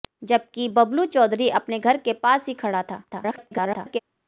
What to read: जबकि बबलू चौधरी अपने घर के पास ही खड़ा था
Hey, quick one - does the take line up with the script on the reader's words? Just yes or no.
no